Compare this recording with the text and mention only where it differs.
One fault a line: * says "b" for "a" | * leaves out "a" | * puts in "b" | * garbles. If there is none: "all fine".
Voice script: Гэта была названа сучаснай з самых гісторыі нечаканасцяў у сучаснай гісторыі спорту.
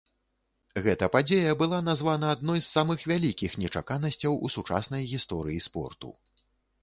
* puts in "падзея"
* says "адной" for "сучаснай"
* says "вялікіх" for "гісторыі"